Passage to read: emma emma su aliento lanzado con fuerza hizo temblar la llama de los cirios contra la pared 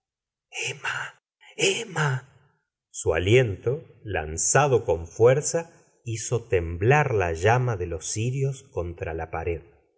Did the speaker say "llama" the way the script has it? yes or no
yes